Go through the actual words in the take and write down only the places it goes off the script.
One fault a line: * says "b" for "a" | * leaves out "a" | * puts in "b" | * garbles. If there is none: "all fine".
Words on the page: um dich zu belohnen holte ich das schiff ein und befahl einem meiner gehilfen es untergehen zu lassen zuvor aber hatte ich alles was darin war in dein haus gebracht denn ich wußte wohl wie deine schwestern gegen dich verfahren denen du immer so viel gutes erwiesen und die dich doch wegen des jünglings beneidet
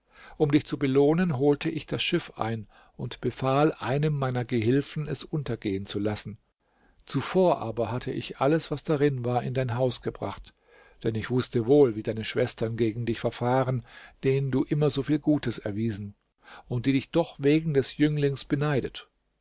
all fine